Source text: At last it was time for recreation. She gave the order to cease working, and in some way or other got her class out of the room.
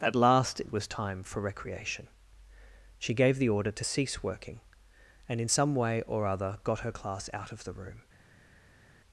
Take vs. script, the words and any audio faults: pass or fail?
pass